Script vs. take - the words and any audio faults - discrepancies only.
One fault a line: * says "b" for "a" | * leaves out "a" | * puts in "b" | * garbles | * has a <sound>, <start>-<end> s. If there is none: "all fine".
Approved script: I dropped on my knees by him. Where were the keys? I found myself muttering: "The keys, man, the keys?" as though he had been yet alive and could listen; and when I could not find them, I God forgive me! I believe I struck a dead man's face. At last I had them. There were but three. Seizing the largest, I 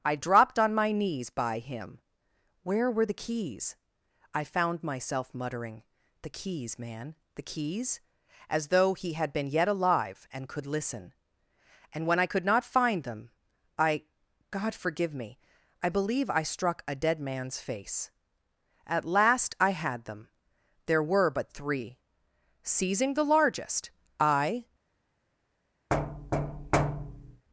* has a thud, 25.9-27.5 s